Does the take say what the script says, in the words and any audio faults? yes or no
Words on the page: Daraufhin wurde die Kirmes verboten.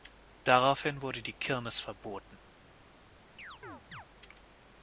no